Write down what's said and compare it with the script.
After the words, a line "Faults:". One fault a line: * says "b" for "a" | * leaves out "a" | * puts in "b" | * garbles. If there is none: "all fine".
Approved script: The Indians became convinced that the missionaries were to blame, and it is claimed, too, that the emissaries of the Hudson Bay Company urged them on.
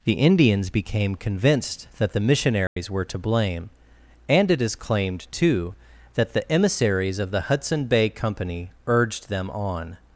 The Indians became convinced that the missionaries were to blame, and it is claimed, too, that the emissaries of the Hudson Bay Company urged them on.
Faults:
all fine